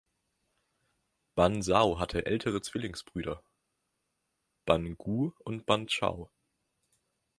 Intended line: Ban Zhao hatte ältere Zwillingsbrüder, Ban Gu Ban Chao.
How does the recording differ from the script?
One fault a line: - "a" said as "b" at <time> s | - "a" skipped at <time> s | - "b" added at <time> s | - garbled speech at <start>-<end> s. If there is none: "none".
- "und" added at 5.4 s